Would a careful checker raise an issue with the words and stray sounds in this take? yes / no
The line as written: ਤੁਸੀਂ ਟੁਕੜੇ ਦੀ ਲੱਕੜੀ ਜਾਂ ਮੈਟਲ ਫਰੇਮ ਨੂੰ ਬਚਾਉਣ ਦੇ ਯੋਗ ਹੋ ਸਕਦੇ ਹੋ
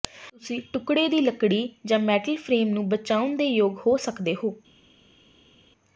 no